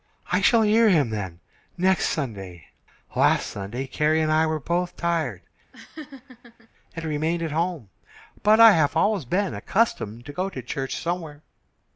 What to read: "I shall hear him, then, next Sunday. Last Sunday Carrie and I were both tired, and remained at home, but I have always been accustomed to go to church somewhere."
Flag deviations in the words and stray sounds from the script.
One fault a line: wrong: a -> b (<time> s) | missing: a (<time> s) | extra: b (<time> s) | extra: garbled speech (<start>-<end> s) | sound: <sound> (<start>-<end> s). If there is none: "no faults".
sound: laugh (5.7-6.7 s)